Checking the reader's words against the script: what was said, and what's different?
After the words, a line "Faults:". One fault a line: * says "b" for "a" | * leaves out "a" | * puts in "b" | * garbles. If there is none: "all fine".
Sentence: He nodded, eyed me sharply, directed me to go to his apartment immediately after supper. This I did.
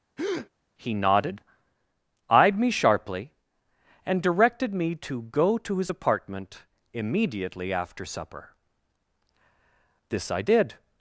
He nodded, eyed me sharply, and directed me to go to his apartment immediately after supper. This I did.
Faults:
* puts in "and"